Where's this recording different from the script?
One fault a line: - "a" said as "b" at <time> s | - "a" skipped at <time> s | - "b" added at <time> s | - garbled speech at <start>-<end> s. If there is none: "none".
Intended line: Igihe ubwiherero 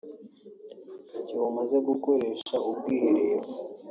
- "umaze gukoresha" added at 1.5 s